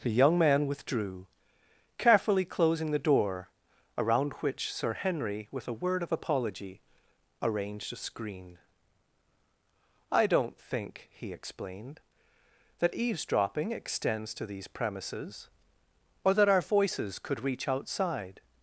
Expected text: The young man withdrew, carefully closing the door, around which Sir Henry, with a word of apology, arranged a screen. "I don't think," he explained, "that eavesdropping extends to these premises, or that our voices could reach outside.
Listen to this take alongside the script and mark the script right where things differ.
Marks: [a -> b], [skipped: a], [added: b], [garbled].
The young man withdrew, carefully closing the door, around which Sir Henry, with a word of apology, arranged a screen. "I don't think," he explained, "that eavesdropping extends to these premises, or that our voices could reach outside.